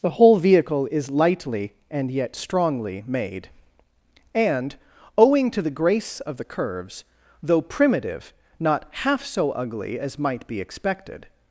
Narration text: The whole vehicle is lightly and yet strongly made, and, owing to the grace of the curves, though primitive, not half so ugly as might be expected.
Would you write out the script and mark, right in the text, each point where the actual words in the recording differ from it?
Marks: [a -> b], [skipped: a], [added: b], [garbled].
The whole vehicle is lightly and yet strongly made, and, owing to the grace of the curves, though primitive, not half so ugly as might be expected.